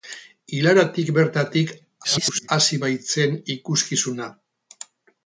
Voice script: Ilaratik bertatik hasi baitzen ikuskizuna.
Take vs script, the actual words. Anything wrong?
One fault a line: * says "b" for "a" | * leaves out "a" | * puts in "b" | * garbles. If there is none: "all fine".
* garbles